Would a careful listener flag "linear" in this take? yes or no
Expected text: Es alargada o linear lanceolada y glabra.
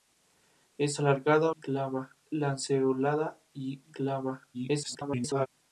yes